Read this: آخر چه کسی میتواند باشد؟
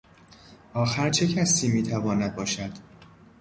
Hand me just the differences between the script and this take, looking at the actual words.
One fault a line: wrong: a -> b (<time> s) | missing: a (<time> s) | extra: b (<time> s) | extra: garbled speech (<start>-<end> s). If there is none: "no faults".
no faults